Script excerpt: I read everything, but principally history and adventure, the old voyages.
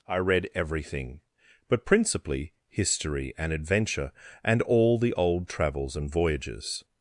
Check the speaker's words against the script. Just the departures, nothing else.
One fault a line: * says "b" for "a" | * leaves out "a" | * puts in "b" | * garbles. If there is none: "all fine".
* puts in "and all"
* puts in "travels and"